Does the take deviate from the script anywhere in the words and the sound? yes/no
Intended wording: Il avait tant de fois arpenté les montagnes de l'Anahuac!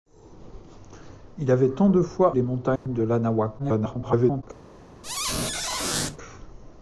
yes